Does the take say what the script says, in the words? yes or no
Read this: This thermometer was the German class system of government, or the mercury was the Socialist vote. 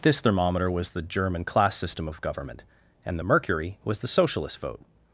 no